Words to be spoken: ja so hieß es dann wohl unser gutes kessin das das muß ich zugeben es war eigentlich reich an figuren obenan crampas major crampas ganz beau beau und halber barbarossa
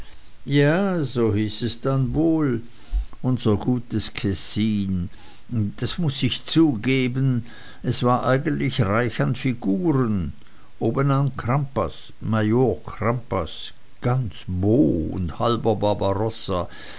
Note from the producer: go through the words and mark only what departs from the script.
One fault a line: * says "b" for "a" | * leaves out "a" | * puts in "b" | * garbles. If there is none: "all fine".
* leaves out "das"
* leaves out "beau"